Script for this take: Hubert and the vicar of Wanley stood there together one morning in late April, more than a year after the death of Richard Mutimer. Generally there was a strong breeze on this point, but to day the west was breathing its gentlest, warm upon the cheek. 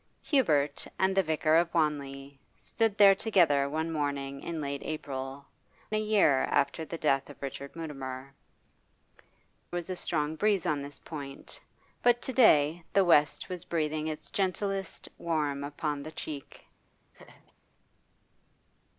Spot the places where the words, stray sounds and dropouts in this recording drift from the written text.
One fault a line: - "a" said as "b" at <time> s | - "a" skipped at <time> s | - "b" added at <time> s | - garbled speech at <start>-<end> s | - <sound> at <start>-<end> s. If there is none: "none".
- "more than" skipped at 5.5 s
- "Generally there" skipped at 8.3 s
- laugh at 17.1-17.5 s